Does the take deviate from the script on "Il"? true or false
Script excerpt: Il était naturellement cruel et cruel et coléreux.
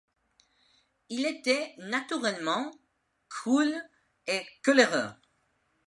false